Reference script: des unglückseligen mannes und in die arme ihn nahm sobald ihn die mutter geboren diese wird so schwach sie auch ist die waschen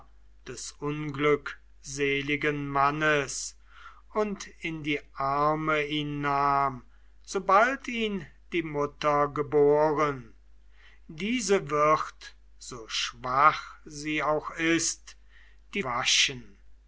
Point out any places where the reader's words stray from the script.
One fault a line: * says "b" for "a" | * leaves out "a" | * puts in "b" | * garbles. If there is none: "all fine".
all fine